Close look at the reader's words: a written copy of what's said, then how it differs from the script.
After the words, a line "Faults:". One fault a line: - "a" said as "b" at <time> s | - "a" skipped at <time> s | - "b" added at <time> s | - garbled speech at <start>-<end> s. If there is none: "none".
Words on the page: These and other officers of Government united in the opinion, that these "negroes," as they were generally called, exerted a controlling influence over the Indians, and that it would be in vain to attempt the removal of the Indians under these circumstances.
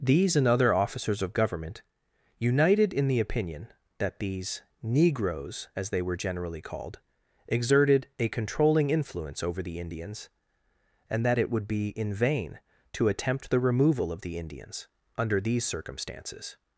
These and other officers of Government united in the opinion, that these "negroes," as they were generally called, exerted a controlling influence over the Indians, and that it would be in vain to attempt the removal of the Indians under these circumstances.
Faults:
none